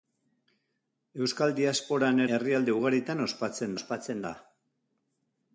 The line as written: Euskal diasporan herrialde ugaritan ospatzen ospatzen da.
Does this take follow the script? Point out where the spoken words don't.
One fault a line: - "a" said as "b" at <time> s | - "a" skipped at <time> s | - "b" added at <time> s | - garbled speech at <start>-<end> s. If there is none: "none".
none